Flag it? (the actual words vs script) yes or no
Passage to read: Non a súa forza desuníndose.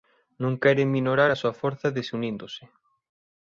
yes